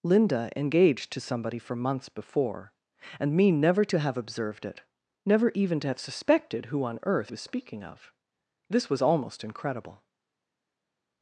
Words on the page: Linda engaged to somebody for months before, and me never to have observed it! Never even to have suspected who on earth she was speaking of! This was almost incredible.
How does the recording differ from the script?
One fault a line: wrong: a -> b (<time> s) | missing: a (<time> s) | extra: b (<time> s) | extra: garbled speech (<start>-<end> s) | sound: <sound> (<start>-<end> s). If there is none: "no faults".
missing: she (7.3 s)